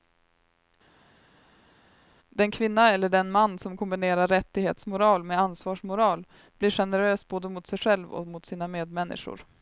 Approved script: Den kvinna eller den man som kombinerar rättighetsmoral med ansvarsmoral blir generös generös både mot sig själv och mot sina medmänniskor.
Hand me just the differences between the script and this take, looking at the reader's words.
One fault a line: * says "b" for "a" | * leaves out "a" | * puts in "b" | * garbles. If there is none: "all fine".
* leaves out "generös"